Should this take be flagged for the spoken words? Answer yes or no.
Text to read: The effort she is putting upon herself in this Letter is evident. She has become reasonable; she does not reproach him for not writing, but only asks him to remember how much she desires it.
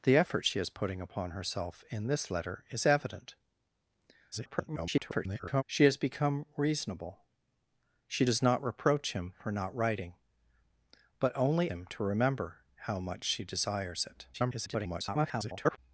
yes